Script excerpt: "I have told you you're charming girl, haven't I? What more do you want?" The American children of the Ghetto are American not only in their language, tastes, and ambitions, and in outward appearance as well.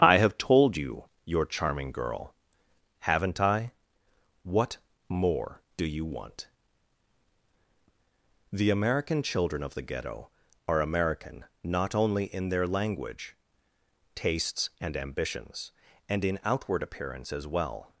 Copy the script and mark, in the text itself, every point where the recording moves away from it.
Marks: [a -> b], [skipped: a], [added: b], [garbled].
"I have told you you're charming girl, haven't I? What more do you want?" The American children of the Ghetto are American not only in their language, tastes, and ambitions, and in outward appearance as well.